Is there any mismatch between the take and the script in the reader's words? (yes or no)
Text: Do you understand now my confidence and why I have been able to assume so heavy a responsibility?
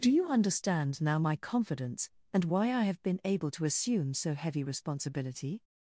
yes